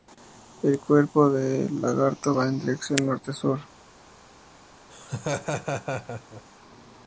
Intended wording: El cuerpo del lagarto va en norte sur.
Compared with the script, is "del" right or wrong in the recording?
right